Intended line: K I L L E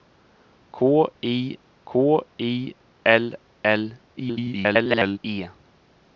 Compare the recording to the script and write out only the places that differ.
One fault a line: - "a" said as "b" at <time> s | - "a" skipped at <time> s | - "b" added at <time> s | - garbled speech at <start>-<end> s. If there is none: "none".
- "k I" added at 1.9 s
- garbled speech at 4.2-5.2 s